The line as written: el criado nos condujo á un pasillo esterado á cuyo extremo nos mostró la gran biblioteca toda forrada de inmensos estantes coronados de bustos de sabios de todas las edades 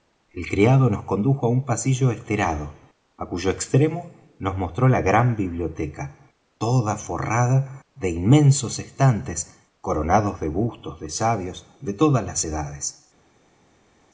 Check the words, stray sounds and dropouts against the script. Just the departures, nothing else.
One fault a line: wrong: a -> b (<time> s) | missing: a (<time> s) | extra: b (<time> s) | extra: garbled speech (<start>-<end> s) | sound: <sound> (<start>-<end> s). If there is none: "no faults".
no faults